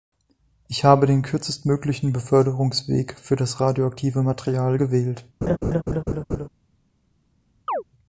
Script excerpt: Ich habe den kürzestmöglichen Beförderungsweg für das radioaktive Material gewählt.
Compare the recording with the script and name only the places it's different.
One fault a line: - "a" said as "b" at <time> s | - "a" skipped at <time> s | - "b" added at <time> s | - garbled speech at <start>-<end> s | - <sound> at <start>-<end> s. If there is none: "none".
- laugh at 5.4-6.5 s
- chirp at 7.7-7.8 s